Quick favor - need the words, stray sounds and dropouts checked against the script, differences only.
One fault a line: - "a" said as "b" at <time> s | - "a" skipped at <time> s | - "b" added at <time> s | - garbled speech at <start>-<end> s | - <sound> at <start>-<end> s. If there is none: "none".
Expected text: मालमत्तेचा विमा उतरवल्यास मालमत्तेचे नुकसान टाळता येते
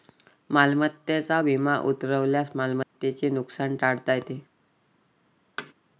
- dropout at 2.8-2.9 s
- thud at 5.6-5.7 s